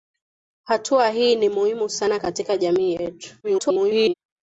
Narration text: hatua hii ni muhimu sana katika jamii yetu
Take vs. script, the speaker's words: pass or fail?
fail